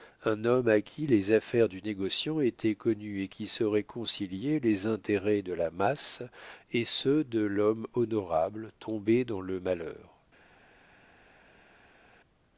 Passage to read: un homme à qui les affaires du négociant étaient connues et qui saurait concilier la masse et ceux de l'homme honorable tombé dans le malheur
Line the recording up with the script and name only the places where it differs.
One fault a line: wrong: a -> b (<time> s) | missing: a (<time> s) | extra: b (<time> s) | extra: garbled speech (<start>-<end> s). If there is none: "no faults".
extra: les intérêts de (4.6 s)